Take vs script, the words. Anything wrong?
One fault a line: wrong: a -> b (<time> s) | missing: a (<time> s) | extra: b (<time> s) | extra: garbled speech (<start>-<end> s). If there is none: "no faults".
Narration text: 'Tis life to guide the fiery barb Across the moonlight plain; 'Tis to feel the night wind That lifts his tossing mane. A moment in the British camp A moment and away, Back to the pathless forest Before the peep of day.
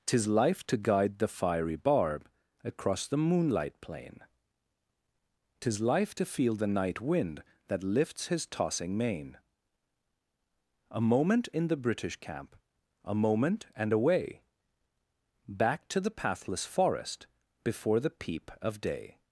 extra: life (5.8 s)